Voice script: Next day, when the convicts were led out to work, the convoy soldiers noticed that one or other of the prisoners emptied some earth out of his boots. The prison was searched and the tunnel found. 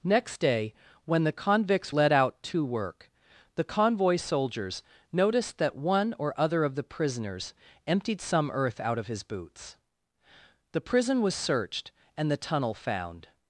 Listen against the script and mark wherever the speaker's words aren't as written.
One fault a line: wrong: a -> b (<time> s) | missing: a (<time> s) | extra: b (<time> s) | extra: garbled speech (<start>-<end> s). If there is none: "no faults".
missing: were (1.9 s)